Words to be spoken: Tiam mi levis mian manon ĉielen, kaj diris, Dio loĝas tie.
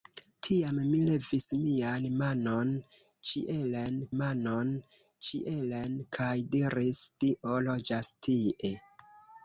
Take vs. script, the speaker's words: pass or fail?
fail